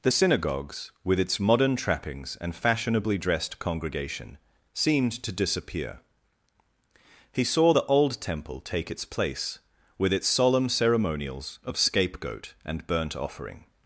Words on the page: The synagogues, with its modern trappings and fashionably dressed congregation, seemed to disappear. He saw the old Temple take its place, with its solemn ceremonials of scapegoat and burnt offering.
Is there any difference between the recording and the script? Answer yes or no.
no